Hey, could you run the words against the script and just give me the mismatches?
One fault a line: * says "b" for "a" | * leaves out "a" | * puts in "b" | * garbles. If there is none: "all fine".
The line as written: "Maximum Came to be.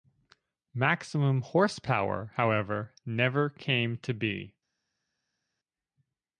* puts in "Horsepower however never"